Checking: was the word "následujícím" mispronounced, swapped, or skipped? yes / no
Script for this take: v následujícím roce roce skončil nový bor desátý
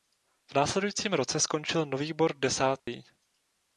no